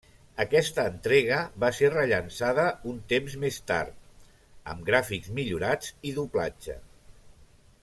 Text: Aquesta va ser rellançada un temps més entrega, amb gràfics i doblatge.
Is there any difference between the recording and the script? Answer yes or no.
yes